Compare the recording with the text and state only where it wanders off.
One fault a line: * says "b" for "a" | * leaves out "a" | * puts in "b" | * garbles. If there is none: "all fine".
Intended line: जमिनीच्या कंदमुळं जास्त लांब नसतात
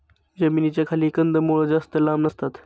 * puts in "खाली"